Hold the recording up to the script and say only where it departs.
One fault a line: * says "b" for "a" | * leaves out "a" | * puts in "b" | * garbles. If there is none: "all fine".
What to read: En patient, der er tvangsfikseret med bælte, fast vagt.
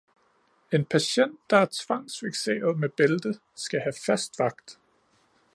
* puts in "skal have"